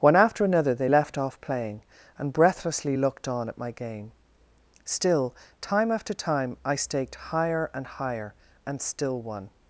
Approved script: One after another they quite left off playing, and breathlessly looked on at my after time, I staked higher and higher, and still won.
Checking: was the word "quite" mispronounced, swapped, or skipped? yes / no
yes